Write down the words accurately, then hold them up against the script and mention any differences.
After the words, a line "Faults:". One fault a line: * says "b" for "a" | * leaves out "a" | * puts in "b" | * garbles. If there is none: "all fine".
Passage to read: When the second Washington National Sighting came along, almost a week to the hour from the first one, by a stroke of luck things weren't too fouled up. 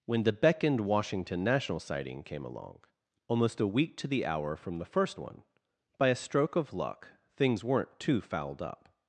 When the beckoned Washington National Sighting came along, almost a week to the hour from the first one, by a stroke of luck things weren't too fouled up.
Faults:
* says "beckoned" for "second"